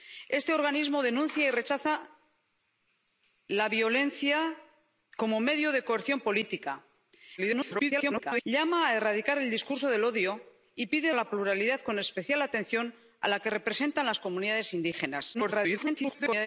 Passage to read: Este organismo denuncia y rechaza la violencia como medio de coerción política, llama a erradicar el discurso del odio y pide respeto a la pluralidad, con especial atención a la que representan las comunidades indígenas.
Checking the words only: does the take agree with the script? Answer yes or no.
no